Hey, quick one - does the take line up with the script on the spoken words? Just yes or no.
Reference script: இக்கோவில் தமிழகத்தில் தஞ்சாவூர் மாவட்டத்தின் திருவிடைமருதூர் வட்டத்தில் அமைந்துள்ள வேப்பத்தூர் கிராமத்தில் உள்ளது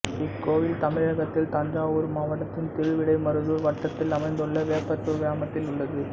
yes